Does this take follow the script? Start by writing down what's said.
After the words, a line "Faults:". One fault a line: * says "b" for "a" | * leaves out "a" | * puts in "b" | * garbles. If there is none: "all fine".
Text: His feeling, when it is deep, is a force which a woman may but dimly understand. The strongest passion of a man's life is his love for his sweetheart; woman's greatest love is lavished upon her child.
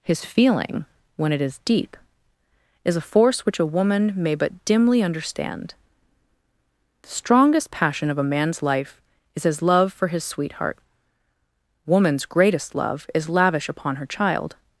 His feeling, when it is deep, is a force which a woman may but dimly understand. The strongest passion of a man's life is his love for his sweetheart; woman's greatest love is lavish upon her child.
Faults:
* says "lavish" for "lavished"